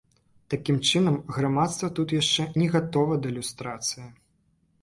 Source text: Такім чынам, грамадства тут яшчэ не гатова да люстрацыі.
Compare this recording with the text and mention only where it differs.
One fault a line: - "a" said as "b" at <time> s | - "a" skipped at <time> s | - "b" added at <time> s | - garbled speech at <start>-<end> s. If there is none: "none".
none